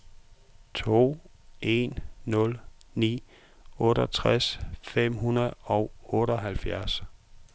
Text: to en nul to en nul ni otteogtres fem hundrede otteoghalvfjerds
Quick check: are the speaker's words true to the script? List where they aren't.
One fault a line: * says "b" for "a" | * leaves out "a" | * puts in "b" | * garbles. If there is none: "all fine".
* leaves out "to en nul"
* puts in "og"